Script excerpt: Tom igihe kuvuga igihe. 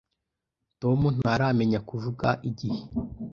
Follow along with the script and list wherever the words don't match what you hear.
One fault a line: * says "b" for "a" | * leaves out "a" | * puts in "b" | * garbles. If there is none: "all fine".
* says "ntaramenya" for "igihe"